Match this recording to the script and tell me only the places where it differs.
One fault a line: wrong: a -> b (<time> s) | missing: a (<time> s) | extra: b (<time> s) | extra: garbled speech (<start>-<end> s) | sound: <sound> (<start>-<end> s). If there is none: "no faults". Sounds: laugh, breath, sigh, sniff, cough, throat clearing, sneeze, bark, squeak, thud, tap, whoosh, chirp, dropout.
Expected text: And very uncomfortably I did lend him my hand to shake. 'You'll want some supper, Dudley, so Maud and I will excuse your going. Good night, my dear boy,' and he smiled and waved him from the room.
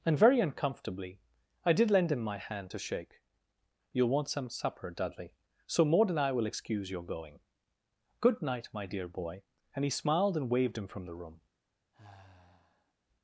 sound: sigh (11.9-12.9 s)